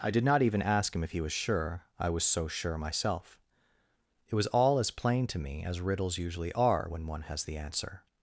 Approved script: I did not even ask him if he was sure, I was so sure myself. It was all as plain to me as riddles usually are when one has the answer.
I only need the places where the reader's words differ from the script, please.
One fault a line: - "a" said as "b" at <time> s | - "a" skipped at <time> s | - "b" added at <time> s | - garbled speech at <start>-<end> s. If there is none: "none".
none